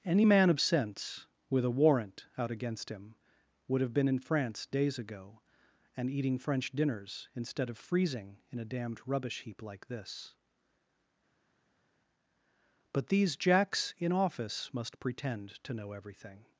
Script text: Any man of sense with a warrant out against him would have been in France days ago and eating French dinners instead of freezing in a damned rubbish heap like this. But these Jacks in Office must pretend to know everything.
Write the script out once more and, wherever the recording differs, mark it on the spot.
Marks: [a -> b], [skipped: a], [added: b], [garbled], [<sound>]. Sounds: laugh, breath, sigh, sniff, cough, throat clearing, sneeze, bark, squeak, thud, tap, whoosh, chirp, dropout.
Any man of sense with a warrant out against him would have been in France days ago and eating French dinners instead of freezing in a damned rubbish heap like this. But these Jacks in Office must pretend to know everything.